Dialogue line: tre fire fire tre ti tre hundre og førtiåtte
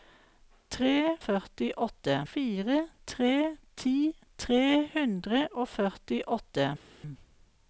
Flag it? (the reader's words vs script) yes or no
yes